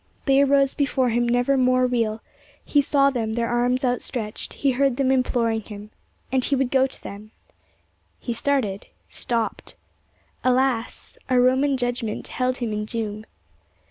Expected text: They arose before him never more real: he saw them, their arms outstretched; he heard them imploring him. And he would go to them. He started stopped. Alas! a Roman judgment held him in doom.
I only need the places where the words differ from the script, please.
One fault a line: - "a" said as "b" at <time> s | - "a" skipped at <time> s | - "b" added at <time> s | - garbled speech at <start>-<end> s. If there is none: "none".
none